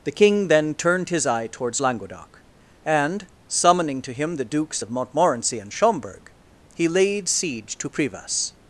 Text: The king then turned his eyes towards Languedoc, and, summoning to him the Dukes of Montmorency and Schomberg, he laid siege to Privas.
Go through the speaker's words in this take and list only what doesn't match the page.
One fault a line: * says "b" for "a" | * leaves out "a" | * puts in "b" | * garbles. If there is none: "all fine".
* says "eye" for "eyes"